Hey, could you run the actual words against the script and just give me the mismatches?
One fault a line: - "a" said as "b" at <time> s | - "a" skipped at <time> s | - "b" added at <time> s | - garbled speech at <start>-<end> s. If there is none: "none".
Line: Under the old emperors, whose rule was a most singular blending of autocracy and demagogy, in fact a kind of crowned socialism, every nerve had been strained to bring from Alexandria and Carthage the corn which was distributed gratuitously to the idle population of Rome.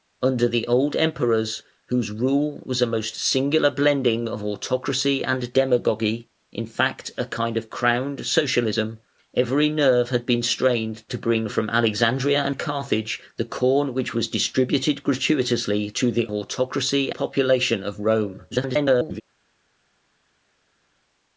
- "idle" said as "autocracy" at 16.3 s
- garbled speech at 18.5-19.2 s